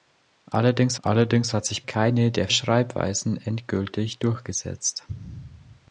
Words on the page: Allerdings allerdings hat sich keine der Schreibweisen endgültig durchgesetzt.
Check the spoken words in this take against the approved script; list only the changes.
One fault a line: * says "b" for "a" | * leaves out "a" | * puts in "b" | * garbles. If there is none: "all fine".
all fine